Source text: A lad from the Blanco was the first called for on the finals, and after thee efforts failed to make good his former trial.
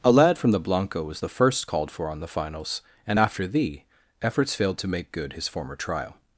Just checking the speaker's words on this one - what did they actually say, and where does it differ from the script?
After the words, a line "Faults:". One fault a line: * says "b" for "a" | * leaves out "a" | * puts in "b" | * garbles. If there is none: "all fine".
A lad from the Blanco was the first called for on the finals, and after thee efforts failed to make good his former trial.
Faults:
all fine